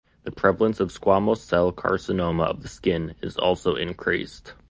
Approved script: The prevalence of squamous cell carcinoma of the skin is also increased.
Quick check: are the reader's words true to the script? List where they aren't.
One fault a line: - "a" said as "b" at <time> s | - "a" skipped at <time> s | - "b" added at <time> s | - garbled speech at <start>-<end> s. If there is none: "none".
none